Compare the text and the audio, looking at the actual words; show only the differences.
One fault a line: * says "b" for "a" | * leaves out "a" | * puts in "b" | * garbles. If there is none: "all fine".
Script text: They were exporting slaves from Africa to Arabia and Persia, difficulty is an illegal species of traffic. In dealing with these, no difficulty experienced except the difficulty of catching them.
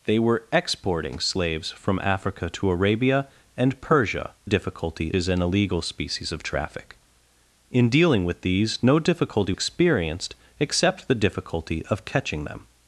all fine